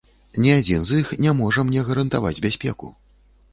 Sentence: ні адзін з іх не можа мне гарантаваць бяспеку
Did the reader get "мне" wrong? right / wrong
right